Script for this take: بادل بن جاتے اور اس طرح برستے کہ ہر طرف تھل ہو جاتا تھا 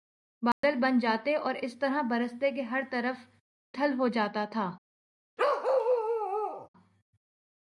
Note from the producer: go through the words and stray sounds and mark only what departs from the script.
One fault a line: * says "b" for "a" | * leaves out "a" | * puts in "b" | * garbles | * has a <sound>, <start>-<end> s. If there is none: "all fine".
* has a dropout, 0.5-0.6 s
* has a bark, 5.4-6.7 s